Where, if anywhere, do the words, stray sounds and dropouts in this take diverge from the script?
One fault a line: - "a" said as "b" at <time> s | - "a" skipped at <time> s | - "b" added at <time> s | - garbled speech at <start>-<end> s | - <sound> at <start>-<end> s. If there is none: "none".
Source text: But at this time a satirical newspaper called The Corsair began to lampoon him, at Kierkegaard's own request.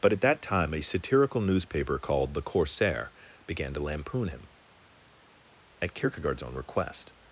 - "this" said as "that" at 0.2 s